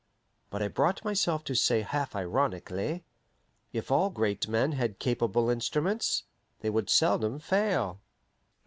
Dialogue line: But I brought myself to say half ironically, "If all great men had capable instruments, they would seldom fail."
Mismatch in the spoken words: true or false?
false